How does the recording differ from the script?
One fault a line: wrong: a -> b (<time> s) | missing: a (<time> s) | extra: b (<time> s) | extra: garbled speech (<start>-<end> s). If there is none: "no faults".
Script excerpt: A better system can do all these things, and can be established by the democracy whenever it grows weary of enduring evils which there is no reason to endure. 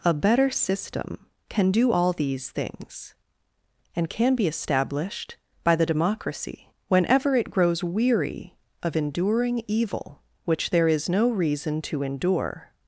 wrong: evils -> evil (9.7 s)